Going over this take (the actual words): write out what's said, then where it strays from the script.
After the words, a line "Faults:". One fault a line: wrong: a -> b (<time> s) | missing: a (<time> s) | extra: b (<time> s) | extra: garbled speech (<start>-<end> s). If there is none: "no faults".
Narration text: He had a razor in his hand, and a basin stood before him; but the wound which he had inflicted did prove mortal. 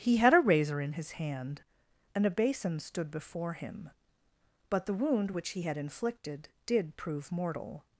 He had a razor in his hand, and a basin stood before him; but the wound which he had inflicted did prove mortal.
Faults:
no faults